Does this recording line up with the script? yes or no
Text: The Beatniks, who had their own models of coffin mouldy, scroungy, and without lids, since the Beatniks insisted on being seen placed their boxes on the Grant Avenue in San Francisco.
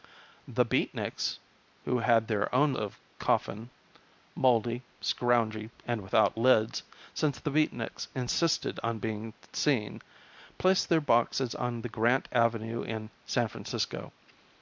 no